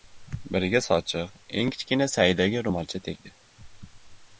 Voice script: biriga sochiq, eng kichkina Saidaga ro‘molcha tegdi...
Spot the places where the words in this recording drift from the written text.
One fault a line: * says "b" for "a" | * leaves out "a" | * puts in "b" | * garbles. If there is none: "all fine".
all fine